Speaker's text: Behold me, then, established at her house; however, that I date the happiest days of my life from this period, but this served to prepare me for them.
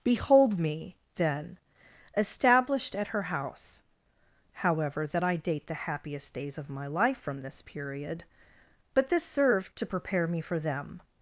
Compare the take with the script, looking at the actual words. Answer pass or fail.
pass